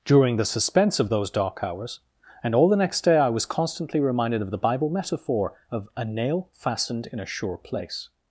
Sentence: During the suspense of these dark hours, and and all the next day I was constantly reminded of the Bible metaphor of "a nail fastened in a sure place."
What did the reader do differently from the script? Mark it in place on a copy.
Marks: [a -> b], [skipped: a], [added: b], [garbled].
During the suspense of [these -> those] dark hours, and [skipped: and] all the next day I was constantly reminded of the Bible metaphor of "a nail fastened in a sure place."